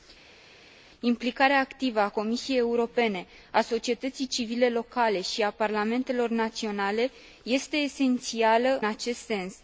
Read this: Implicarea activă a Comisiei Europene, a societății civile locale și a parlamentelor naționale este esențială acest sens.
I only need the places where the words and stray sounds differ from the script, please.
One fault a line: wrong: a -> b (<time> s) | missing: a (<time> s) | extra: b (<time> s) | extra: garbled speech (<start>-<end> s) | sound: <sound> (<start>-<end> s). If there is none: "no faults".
no faults